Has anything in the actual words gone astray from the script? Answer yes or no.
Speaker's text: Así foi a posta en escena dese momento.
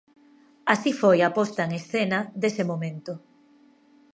no